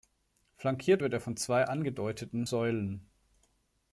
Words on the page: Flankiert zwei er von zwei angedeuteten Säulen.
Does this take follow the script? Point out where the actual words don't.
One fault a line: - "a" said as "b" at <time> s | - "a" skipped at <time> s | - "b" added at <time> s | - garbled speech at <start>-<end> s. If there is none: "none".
- "zwei" said as "wird" at 1.0 s